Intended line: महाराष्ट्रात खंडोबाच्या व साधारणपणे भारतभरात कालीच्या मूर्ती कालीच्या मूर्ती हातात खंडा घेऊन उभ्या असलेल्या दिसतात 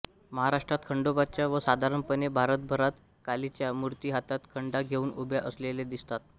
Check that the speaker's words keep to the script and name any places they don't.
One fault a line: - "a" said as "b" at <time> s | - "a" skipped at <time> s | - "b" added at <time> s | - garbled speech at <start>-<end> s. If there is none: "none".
- "कालीच्या मूर्ती" skipped at 4.1 s